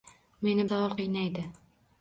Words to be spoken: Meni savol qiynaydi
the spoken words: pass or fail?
pass